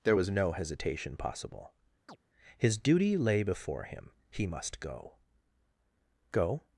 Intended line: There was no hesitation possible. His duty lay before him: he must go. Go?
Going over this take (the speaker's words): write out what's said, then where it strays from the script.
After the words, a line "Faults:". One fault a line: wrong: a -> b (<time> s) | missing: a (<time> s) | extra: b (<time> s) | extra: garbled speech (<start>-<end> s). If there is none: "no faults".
There was no hesitation possible. His duty lay before him: he must go. Go?
Faults:
no faults